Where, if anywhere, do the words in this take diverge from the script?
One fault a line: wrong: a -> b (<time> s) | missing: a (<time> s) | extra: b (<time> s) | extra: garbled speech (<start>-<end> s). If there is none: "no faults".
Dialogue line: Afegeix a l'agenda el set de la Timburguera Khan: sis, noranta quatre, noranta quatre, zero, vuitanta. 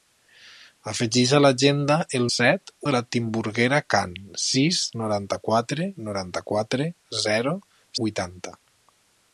no faults